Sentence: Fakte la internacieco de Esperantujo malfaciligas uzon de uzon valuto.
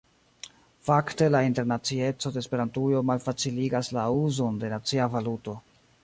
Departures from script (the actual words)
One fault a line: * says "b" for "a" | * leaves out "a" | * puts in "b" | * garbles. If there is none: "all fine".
* puts in "la"
* says "nacia" for "uzon"